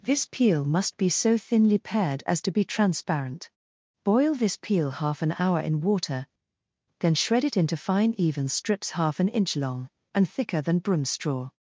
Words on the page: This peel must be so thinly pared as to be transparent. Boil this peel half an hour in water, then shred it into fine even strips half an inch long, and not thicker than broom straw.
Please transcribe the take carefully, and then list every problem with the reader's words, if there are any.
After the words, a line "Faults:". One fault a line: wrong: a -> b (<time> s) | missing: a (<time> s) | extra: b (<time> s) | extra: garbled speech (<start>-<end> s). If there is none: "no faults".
This peel must be so thinly pared as to be transparent. Boil this peel half an hour in water, then shred it into fine even strips half an inch long, and thicker than broom straw.
Faults:
missing: not (10.3 s)